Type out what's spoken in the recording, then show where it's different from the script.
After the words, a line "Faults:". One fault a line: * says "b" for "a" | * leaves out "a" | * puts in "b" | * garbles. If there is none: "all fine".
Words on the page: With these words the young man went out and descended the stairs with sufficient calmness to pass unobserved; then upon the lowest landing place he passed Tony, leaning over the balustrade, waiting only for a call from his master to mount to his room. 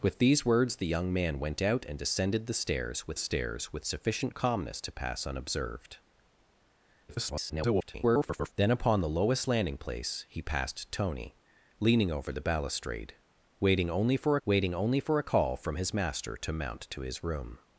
With these words the young man went out and descended the stairs with stairs with sufficient calmness to pass unobserved; [garbled] then upon the lowest landing place he passed Tony, leaning over the balustrade, waiting only for waiting only for a call from his master to mount to his room.
Faults:
* puts in "stairs with"
* garbles
* puts in "waiting only for"